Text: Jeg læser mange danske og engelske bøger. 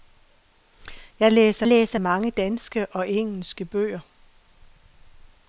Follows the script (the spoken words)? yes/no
no